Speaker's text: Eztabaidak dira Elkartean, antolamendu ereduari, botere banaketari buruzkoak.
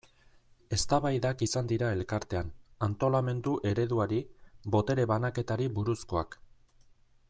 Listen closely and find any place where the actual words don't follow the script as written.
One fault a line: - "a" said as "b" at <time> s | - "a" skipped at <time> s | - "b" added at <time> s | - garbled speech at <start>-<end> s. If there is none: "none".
- "izan" added at 1.5 s